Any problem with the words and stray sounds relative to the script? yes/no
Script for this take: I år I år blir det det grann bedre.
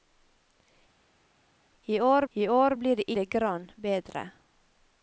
no